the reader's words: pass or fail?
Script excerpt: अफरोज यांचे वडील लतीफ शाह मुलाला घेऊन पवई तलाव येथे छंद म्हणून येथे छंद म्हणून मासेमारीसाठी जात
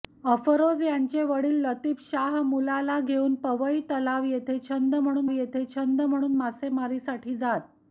pass